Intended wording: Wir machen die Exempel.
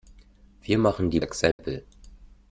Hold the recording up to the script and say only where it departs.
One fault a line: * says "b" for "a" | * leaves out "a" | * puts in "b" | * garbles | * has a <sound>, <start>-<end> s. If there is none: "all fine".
* has a dropout, 1.5-1.6 s